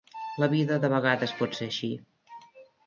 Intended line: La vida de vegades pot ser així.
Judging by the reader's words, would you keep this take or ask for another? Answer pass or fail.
pass